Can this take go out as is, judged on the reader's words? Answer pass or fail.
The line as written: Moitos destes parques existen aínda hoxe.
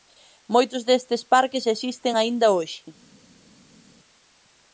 pass